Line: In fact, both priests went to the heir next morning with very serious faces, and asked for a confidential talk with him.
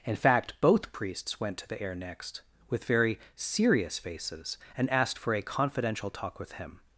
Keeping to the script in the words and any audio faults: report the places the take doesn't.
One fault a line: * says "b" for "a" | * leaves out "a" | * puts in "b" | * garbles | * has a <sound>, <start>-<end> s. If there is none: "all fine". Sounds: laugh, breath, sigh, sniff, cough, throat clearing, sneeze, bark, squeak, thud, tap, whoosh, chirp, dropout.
* leaves out "morning"